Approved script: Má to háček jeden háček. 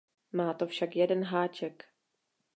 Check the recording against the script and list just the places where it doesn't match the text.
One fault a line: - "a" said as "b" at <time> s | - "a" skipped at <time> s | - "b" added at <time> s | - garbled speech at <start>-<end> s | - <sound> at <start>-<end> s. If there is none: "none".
- "háček" said as "však" at 0.7 s